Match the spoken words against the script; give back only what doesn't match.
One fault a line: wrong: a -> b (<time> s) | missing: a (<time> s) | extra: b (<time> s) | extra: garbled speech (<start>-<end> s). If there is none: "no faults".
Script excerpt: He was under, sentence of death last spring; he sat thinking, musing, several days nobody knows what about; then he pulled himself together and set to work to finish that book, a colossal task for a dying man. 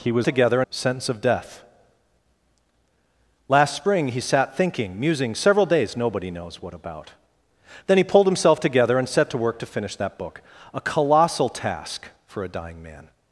wrong: under -> together (0.2 s)